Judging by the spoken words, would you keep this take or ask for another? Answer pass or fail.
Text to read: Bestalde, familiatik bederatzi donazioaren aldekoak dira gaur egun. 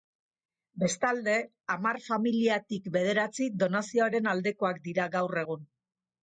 fail